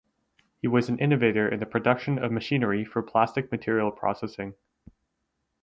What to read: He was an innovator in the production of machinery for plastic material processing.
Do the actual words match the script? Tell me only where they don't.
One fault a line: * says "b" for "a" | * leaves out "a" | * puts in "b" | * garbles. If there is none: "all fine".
all fine